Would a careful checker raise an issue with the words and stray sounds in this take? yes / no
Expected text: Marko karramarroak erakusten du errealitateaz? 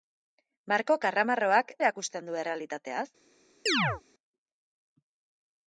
yes